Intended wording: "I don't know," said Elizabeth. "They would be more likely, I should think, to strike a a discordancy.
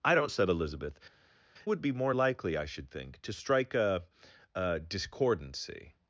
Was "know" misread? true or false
true